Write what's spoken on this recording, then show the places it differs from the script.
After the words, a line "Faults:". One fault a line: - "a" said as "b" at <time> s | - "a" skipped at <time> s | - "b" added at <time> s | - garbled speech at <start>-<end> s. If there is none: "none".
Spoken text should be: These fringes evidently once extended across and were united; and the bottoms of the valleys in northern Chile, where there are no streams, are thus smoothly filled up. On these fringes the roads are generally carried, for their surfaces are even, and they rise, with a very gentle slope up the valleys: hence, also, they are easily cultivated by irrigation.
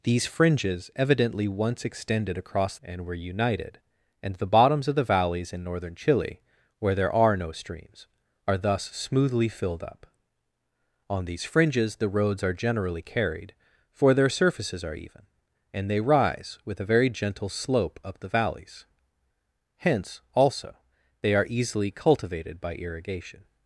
These fringes evidently once extended across and were united; and the bottoms of the valleys in northern Chile, where there are no streams, are thus smoothly filled up. On these fringes the roads are generally carried, for their surfaces are even, and they rise, with a very gentle slope up the valleys: hence, also, they are easily cultivated by irrigation.
Faults:
none